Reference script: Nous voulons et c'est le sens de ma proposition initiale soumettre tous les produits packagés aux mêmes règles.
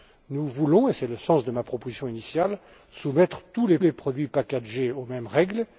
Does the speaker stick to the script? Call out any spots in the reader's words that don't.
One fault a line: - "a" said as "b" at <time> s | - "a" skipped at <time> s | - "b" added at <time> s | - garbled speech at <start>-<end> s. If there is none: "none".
- "les" added at 3.8 s